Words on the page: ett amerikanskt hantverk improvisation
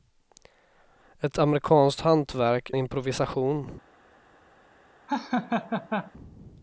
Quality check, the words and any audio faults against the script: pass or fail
fail